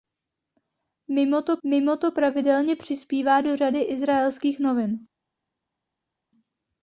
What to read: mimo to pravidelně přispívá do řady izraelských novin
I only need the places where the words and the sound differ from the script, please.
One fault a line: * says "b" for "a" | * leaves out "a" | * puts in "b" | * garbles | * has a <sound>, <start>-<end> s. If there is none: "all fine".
* puts in "mimo to"